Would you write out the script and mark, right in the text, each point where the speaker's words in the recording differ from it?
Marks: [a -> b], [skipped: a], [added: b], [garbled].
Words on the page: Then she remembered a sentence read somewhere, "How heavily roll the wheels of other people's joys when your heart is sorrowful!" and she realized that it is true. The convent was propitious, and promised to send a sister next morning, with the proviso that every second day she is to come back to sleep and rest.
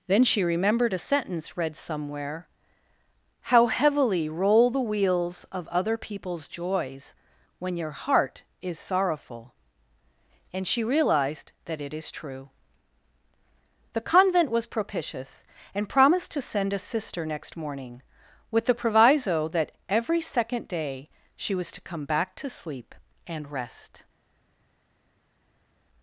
Then she remembered a sentence read somewhere, "How heavily roll the wheels of other people's joys when your heart is sorrowful!" and she realized that it is true. The convent was propitious, and promised to send a sister next morning, with the proviso that every second day she [is -> was] to come back to sleep and rest.